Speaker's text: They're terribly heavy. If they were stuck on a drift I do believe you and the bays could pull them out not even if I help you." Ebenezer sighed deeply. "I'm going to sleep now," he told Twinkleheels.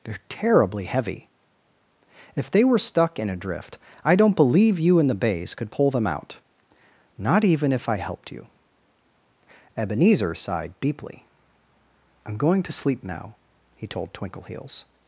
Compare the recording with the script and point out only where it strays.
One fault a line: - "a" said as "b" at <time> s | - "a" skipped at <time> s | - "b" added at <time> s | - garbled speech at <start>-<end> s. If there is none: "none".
- "on" said as "in" at 3.2 s
- "do" said as "don't" at 4.2 s
- "help" said as "helped" at 8.0 s